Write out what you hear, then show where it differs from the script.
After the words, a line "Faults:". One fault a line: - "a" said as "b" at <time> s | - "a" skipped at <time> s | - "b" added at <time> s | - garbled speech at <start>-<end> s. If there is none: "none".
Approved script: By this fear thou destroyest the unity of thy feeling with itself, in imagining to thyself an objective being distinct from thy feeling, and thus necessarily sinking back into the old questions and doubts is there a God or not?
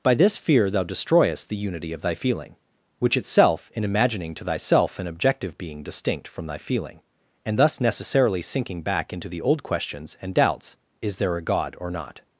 By this fear thou destroyest the unity of thy feeling which itself, in imagining to thyself an objective being distinct from thy feeling, and thus necessarily sinking back into the old questions and doubts is there a God or not?
Faults:
- "with" said as "which" at 3.0 s